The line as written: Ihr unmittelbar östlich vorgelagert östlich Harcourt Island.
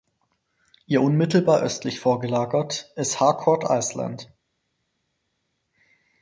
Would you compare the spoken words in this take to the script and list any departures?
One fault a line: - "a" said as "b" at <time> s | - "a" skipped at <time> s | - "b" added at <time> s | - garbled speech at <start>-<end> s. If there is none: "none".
- "östlich" said as "ist" at 3.0 s